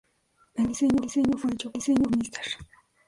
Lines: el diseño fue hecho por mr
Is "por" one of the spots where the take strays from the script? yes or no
yes